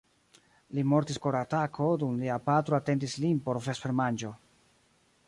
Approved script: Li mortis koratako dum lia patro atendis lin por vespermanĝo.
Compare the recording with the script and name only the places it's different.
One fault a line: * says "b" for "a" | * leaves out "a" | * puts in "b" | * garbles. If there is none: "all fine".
all fine